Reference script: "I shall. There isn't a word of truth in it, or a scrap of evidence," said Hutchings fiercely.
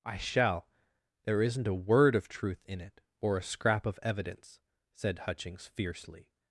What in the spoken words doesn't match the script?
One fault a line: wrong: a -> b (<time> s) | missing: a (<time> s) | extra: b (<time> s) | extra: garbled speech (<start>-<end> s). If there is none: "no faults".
no faults